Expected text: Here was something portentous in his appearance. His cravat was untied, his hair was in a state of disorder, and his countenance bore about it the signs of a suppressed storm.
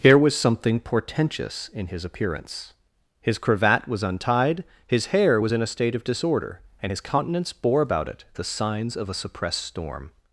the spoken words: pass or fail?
pass